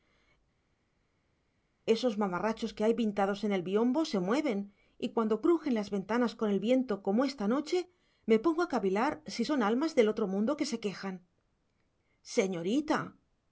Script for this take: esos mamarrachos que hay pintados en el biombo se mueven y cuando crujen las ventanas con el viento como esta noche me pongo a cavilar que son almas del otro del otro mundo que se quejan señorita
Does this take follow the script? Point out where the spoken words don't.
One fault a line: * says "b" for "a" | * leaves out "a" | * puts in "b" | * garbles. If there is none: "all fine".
* says "si" for "que"
* leaves out "del otro"